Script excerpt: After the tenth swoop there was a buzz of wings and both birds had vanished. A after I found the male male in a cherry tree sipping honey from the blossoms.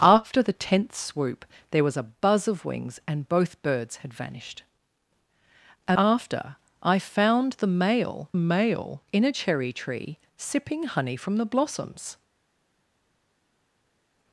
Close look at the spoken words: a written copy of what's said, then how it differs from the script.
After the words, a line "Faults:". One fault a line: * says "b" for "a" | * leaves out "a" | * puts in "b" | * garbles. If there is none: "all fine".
After the tenth swoop there was a buzz of wings and both birds had vanished. A after I found the male male in a cherry tree sipping honey from the blossoms.
Faults:
all fine